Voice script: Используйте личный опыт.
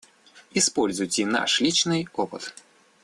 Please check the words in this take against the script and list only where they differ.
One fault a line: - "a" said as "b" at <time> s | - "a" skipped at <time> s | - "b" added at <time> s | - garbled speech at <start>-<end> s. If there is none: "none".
- "наш" added at 1.3 s